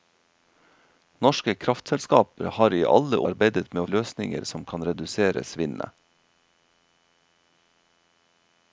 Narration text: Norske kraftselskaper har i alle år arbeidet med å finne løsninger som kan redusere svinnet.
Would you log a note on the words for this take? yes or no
yes